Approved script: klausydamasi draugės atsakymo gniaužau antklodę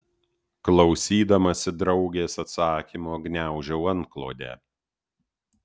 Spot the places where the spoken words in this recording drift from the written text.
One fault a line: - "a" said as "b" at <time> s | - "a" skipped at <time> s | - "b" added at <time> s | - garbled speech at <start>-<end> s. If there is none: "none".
none